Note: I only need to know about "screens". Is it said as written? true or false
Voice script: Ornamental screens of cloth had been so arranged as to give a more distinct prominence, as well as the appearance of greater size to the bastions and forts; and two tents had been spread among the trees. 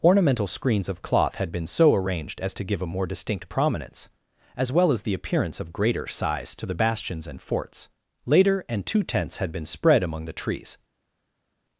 true